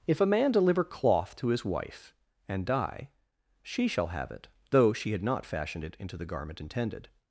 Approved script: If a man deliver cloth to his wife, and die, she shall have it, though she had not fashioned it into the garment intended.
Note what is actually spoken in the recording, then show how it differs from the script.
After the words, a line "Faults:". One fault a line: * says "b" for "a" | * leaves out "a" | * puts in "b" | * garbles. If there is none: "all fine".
If a man deliver cloth to his wife, and die, she shall have it, though she had not fashioned it into the garment intended.
Faults:
all fine